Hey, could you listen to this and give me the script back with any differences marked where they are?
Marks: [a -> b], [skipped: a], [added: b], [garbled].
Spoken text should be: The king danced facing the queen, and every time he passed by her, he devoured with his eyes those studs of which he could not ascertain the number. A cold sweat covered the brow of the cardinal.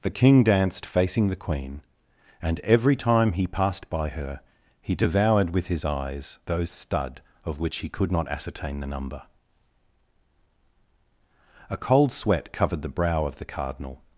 The king danced facing the queen, and every time he passed by her, he devoured with his eyes those [studs -> stud] of which he could not ascertain the number. A cold sweat covered the brow of the cardinal.